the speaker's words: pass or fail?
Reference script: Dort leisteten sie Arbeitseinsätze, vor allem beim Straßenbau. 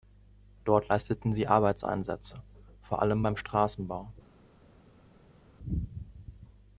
pass